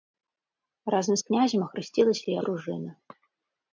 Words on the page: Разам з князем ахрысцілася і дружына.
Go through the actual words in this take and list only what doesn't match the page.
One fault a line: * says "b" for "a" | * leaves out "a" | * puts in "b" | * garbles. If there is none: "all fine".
all fine